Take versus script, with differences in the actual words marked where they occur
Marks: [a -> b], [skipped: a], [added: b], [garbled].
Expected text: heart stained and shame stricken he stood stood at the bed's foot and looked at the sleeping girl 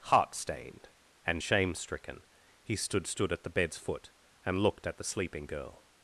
heart stained and shame stricken he stood stood at the bed's foot and looked at the sleeping girl